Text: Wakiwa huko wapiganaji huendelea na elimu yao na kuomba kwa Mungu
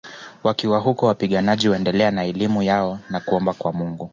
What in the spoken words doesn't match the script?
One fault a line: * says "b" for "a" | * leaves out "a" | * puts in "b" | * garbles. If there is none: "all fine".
all fine